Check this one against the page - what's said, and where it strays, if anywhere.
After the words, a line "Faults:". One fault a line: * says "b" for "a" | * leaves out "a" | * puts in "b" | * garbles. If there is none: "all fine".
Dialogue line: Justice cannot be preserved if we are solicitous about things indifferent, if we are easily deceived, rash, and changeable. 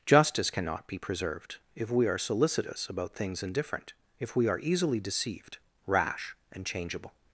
Justice cannot be preserved if we are solicitous about things indifferent, if we are easily deceived, rash, and changeable.
Faults:
all fine